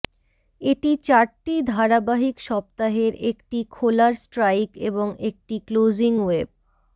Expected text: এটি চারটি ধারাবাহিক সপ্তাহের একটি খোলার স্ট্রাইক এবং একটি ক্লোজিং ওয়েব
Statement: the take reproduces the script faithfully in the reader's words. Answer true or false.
true